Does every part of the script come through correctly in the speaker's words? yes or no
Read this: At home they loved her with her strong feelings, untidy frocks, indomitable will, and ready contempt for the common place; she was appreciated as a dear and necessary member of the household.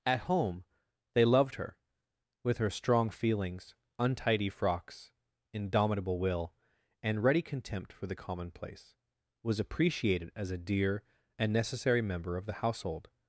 no